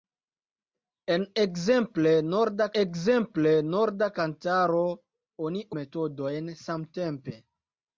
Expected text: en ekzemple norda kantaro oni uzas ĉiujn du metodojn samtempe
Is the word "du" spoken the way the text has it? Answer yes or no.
no